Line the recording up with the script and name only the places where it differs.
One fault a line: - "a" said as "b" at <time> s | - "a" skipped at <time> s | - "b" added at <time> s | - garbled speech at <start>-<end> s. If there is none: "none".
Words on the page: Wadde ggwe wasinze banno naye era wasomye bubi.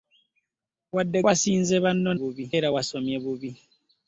- "ggwe" skipped at 1.2 s
- "naye" said as "bubi" at 2.2 s